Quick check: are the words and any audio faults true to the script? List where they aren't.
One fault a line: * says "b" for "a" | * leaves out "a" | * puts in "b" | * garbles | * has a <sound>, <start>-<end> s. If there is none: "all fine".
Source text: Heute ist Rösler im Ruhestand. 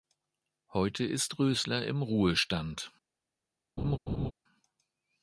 * has a laugh, 3.8-4.3 s